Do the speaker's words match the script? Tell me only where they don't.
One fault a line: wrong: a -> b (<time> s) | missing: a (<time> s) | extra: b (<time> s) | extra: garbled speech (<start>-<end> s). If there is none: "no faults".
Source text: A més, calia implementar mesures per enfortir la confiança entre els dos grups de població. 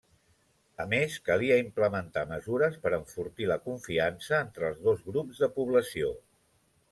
no faults